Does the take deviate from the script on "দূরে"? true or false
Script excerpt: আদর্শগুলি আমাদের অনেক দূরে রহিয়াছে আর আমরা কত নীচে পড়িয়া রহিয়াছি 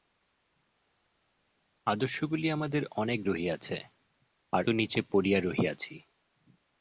true